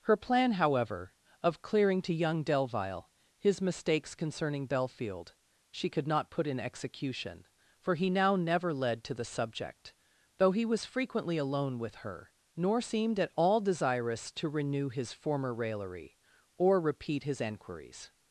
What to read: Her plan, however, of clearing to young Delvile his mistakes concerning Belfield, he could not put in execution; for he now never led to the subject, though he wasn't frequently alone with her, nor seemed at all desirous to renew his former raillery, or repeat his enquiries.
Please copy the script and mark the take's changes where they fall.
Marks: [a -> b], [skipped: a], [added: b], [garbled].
Her plan, however, of clearing to young Delvile his mistakes concerning Belfield, [he -> she] could not put in execution; for he now never led to the subject, though he [wasn't -> was] frequently alone with her, nor seemed at all desirous to renew his former raillery, or repeat his enquiries.